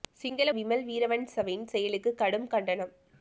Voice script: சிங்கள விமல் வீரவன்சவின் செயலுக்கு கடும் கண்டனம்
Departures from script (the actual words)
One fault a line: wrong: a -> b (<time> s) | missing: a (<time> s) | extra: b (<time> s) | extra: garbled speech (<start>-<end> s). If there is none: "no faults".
no faults